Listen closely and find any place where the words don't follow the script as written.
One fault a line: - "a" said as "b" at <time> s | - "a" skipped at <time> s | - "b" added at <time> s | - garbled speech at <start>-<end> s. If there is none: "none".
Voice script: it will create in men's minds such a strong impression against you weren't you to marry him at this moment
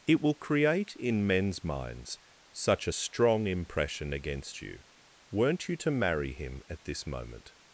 none